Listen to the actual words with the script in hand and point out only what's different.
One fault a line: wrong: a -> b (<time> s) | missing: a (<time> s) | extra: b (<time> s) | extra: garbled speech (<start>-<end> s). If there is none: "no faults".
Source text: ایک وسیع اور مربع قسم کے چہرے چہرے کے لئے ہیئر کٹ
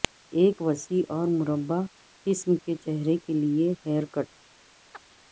missing: چہرے (3.2 s)